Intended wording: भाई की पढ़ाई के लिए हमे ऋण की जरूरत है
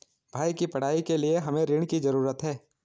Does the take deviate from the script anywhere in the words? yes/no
no